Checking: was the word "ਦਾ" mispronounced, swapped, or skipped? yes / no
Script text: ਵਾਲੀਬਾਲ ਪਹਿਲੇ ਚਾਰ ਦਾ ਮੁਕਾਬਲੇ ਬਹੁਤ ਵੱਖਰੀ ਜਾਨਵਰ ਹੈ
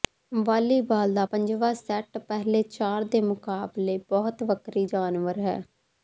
yes